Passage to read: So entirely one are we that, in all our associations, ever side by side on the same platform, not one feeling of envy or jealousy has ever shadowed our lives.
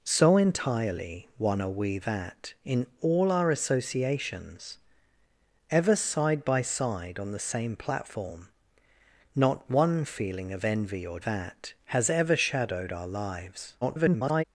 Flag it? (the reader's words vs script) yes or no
yes